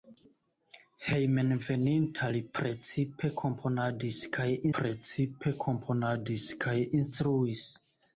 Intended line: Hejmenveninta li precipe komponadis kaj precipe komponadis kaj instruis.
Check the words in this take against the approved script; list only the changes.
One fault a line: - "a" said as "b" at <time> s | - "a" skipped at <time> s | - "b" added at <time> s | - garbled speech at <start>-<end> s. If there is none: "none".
none